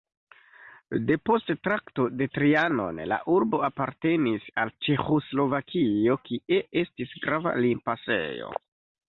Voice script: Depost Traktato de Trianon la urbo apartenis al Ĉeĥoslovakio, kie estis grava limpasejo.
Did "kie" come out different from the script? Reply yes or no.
no